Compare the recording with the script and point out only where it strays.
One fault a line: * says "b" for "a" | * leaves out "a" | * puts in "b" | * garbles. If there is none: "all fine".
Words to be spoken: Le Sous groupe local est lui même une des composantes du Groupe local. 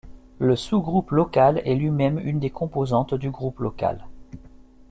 all fine